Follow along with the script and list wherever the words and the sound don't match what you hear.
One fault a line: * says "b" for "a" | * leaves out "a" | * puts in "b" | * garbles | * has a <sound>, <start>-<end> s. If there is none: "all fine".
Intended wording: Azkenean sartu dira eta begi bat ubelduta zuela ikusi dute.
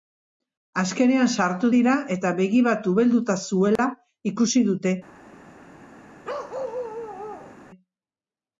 * has a dropout, 3.8-3.8 s
* has a bark, 6.2-7.6 s